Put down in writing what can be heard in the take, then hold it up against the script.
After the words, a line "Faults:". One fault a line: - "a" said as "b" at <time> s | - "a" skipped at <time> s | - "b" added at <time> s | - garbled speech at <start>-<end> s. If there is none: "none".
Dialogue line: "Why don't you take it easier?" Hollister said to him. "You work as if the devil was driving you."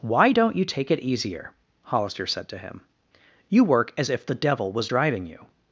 "Why don't you take it easier?" Hollister said to him. "You work as if the devil was driving you."
Faults:
none